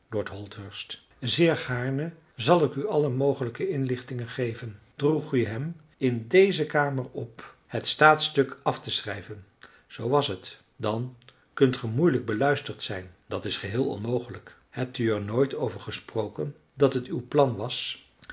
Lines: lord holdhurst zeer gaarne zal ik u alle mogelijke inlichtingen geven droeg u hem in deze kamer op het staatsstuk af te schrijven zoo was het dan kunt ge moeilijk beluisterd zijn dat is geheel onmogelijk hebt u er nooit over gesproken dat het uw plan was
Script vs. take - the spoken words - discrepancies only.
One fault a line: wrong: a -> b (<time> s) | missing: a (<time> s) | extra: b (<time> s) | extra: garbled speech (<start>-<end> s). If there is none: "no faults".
no faults